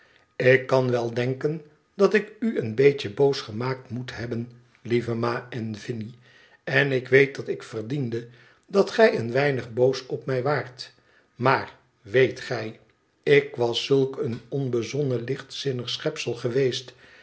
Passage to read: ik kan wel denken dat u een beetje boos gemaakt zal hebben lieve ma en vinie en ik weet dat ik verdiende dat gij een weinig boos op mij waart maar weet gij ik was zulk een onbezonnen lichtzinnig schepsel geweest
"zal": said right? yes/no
no